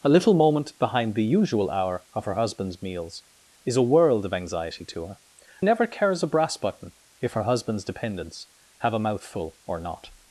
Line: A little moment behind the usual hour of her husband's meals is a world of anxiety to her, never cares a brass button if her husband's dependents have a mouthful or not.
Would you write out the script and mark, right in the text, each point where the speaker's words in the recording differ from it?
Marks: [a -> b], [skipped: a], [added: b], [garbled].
A little moment behind the usual hour of her husband's meals is a world of anxiety to her, never cares a brass button if her husband's dependents have a mouthful or not.